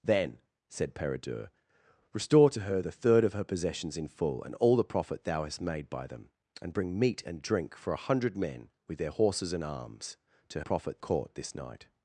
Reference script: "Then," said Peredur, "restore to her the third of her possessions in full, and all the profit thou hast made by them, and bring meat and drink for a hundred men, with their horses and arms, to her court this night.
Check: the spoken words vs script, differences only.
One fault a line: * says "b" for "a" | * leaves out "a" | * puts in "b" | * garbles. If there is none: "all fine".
* says "profit" for "her"